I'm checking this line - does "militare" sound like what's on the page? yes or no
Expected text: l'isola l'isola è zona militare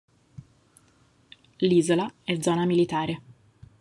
yes